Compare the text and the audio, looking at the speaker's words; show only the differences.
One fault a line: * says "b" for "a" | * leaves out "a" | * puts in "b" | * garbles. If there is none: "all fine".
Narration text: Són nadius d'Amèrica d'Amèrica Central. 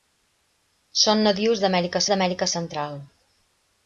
all fine